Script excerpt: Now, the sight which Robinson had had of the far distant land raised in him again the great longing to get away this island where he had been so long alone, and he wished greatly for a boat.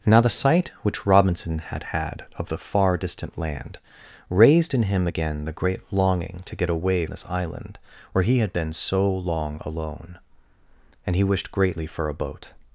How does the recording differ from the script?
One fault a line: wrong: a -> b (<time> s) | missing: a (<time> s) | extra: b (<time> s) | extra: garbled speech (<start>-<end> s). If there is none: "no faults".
no faults